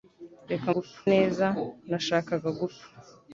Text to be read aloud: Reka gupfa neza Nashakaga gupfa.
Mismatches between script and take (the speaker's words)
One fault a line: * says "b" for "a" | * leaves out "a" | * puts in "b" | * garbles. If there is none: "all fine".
all fine